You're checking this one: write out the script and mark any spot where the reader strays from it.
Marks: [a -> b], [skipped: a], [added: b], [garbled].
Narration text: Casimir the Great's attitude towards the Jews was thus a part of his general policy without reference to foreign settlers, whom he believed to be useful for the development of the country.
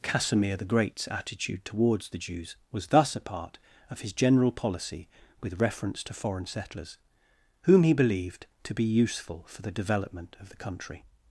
Casimir the Great's attitude towards the Jews was thus a part of his general policy [without -> with] reference to foreign settlers, whom he believed to be useful for the development of the country.